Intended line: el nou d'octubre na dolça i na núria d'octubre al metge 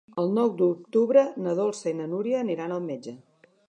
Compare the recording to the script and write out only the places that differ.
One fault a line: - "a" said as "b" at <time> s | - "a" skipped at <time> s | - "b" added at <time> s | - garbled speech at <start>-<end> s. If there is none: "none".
- "d'octubre" said as "aniran" at 2.5 s